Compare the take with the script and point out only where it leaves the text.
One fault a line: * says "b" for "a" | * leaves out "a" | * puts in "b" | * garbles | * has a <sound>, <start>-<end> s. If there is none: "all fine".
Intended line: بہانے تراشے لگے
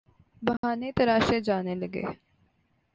* has a dropout, 0.6-0.6 s
* puts in "جانے"